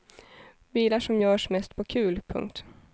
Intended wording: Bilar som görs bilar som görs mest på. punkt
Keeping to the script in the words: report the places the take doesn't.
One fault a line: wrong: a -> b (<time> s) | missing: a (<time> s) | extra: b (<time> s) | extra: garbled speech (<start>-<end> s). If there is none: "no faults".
missing: bilar som görs (1.5 s)
extra: kul (1.8 s)